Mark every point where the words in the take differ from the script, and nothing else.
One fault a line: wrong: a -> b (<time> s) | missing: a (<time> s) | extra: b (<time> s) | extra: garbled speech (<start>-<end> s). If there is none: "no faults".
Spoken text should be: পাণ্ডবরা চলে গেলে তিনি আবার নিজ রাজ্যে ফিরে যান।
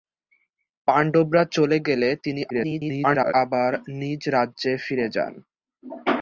extra: garbled speech (2.5-3.3 s)